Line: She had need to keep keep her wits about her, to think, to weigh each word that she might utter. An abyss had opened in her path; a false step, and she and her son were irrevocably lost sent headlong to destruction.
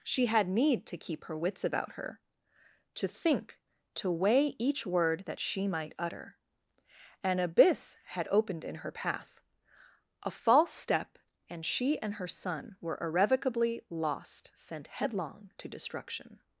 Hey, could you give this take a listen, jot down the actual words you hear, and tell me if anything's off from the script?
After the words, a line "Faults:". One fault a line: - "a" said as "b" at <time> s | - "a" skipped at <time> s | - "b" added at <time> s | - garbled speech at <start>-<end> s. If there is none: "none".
She had need to keep her wits about her, to think, to weigh each word that she might utter. An abyss had opened in her path; a false step, and she and her son were irrevocably lost sent headlong to destruction.
Faults:
- "keep" skipped at 1.2 s